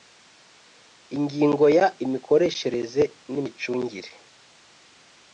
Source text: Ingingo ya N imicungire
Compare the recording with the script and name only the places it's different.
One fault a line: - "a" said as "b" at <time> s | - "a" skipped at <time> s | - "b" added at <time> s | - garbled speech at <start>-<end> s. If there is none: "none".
- "Imikoreshereze" added at 2.0 s